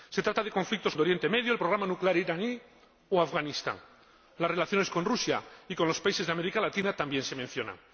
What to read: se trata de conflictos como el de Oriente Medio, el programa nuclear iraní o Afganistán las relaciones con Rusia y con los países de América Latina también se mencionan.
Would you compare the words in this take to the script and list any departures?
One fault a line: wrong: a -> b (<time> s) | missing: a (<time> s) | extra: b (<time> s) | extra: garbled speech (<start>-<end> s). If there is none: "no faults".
missing: como (0.9 s)